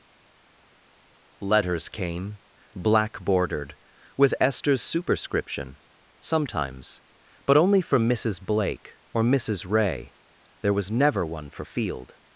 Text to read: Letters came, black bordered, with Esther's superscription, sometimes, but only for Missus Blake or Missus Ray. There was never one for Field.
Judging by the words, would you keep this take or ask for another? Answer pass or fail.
pass